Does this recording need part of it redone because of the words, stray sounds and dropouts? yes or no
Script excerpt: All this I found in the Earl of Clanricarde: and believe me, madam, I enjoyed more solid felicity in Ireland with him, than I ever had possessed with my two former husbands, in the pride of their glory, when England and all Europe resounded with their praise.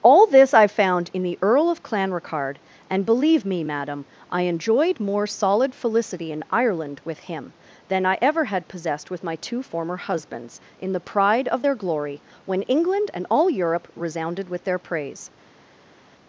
no